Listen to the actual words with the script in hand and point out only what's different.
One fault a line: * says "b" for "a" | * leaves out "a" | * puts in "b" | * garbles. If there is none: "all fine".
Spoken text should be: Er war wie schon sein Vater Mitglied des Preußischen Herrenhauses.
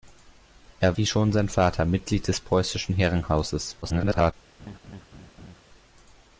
* leaves out "war"
* garbles